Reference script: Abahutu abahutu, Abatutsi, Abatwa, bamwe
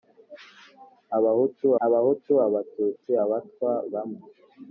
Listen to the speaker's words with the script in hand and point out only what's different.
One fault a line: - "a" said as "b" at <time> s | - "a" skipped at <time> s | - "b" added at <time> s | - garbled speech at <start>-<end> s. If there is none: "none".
none